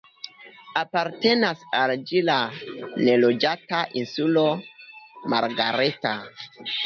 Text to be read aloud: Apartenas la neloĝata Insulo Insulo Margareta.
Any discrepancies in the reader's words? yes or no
yes